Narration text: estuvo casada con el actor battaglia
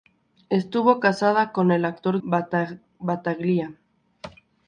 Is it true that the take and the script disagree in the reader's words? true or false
false